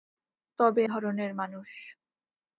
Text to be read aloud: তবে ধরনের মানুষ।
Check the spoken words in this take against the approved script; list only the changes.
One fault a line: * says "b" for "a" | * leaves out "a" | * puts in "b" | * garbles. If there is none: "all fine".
all fine